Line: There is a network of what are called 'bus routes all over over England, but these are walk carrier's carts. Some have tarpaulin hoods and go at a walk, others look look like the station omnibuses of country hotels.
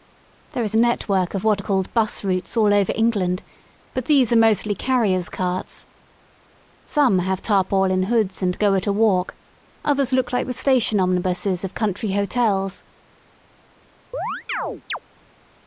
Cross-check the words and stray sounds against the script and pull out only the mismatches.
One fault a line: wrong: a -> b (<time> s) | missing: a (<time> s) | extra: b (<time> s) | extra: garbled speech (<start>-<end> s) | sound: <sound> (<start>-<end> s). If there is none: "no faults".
missing: over (2.9 s)
wrong: walk -> mostly (4.4 s)
missing: look (10.3 s)
sound: chirp (14.1-15.0 s)